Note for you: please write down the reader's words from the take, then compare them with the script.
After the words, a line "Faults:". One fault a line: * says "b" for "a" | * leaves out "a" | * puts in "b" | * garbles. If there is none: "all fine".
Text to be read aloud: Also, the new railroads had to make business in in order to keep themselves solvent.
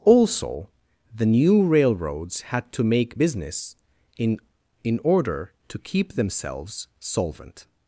Also, the new railroads had to make business in in order to keep themselves solvent.
Faults:
all fine